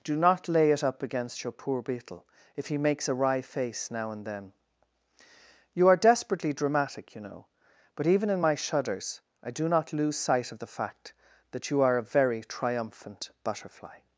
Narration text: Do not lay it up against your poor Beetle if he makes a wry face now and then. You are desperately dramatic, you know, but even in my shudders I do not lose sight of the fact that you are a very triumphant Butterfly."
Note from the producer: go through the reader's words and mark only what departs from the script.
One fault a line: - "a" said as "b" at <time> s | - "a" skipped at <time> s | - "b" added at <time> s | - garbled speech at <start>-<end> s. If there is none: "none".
none